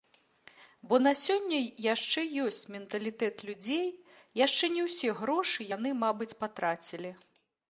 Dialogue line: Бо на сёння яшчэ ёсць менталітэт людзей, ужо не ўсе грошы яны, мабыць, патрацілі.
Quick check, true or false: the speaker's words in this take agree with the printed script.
false